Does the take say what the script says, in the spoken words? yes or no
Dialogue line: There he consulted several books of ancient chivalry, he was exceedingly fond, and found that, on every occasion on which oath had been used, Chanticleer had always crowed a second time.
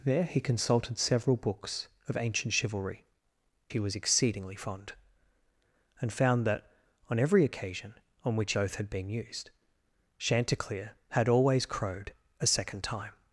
yes